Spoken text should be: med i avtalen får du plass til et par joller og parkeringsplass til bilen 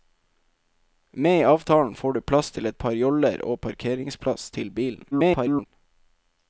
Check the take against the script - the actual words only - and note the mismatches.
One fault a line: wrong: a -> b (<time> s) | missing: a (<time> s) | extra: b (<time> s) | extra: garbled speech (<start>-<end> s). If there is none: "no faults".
extra: garbled speech (5.1-5.7 s)